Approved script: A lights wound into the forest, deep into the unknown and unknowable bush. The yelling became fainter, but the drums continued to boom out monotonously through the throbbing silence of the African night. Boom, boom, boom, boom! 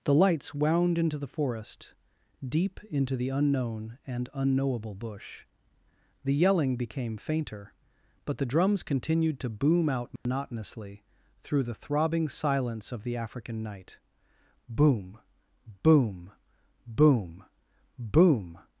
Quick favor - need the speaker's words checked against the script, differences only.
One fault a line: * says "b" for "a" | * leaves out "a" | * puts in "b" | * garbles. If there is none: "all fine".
* says "The" for "A"